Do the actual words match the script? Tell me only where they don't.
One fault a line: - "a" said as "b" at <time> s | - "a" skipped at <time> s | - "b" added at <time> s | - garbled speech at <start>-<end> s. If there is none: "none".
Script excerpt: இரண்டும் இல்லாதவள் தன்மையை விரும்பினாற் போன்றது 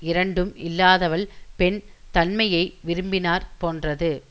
- "பெண்" added at 1.6 s